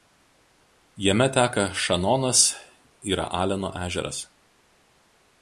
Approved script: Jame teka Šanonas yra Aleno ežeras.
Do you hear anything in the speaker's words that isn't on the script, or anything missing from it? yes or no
no